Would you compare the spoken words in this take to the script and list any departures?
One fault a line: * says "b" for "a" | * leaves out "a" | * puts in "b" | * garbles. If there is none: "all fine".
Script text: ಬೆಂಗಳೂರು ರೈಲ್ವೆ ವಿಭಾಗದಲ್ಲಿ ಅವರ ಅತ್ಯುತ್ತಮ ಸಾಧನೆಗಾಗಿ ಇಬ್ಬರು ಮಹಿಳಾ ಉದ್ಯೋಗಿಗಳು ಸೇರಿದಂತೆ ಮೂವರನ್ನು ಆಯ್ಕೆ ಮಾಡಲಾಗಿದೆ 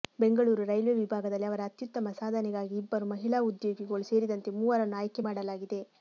all fine